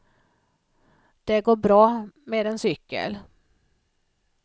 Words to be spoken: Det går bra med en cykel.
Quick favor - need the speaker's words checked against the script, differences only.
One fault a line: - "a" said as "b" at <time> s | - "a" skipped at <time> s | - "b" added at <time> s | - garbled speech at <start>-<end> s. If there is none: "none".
none